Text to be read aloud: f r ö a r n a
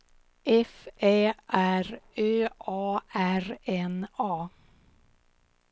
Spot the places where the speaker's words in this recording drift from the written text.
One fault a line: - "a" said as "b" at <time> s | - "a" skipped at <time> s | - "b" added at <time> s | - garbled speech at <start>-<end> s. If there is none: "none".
- "ä" added at 1.0 s